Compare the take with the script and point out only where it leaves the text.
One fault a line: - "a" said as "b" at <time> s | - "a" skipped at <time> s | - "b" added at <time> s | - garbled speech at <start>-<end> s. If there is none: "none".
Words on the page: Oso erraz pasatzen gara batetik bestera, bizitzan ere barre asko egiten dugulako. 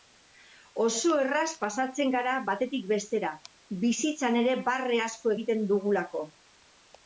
none